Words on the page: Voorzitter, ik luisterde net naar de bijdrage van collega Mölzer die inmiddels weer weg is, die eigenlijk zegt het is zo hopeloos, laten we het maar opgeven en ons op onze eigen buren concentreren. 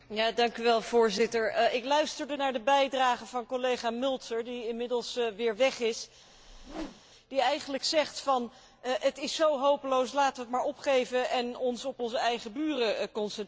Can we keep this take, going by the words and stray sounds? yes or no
no